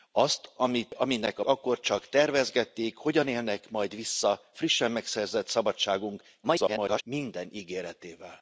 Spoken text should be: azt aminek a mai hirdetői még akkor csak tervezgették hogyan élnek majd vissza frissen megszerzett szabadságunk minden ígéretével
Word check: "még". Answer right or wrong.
wrong